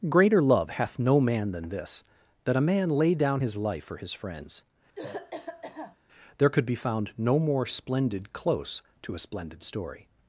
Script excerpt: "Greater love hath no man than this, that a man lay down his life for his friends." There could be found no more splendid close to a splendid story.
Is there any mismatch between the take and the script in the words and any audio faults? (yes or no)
yes